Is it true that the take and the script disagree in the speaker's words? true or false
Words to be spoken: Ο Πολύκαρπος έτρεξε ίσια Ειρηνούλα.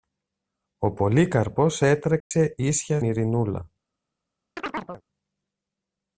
false